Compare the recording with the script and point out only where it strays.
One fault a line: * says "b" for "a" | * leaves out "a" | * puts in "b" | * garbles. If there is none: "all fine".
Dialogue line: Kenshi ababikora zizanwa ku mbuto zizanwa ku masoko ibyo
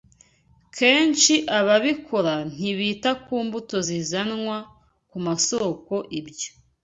* says "ntibita" for "zizanwa"